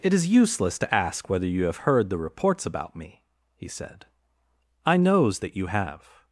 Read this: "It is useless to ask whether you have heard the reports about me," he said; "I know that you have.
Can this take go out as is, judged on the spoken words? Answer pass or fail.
fail